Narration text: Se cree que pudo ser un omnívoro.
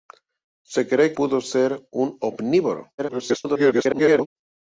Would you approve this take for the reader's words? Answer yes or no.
no